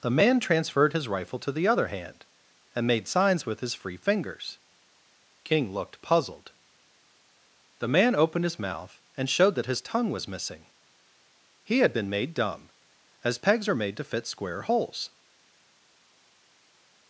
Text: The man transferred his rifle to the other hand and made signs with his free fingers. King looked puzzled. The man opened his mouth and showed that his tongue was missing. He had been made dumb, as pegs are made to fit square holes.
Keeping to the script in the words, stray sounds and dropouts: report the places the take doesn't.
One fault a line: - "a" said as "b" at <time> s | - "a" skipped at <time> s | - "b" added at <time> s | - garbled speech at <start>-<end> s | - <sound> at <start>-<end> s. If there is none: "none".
none